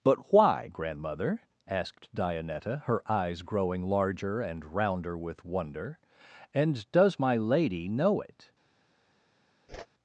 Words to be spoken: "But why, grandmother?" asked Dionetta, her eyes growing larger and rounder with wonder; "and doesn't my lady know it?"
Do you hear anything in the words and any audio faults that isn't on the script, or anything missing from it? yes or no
yes